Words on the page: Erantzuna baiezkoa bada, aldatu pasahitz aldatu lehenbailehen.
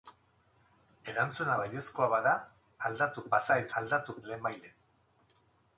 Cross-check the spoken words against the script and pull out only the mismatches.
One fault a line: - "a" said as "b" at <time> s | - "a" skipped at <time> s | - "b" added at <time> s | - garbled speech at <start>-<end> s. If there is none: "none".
none